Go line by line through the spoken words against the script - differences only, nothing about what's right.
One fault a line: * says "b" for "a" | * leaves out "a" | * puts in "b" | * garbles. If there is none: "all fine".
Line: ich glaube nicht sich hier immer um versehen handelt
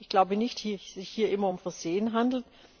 all fine